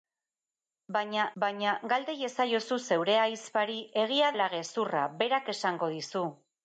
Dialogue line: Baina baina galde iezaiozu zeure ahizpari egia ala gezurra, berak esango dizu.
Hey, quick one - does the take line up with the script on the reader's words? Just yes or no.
yes